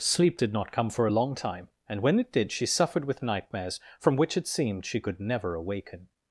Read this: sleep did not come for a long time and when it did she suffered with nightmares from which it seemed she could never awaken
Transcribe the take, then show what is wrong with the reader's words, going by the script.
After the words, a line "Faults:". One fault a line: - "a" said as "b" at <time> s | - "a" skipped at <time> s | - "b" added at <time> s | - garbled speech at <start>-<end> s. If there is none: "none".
sleep did not come for a long time and when it did she suffered with nightmares from which it seemed she could never awaken
Faults:
none